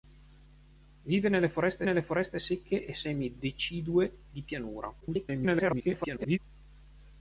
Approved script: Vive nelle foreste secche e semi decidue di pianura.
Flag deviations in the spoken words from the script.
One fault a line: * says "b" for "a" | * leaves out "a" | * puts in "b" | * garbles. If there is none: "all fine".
* puts in "nelle foreste"
* garbles